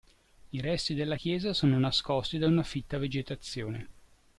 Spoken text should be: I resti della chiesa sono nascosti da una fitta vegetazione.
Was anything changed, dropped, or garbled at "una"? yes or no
no